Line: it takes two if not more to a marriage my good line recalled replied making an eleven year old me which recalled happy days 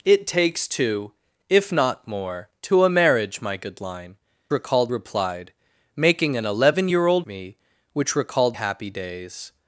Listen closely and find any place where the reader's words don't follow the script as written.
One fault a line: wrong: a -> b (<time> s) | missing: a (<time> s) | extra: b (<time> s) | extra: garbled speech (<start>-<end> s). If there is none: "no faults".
no faults